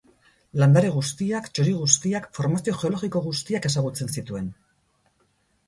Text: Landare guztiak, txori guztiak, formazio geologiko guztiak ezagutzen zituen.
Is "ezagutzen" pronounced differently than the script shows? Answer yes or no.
no